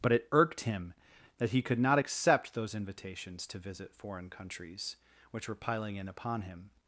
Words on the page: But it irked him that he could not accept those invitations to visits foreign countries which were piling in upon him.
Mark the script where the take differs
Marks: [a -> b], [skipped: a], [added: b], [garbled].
But it irked him that he could not accept those invitations to [visits -> visit] foreign countries which were piling in upon him.